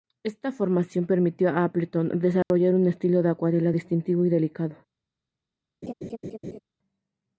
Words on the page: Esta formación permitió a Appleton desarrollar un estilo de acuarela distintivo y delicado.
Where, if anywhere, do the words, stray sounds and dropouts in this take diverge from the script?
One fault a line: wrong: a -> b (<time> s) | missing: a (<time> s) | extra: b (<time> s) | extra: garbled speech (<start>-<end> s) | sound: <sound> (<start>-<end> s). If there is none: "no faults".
sound: dropout (2.4-2.5 s)
sound: laugh (5.8-6.6 s)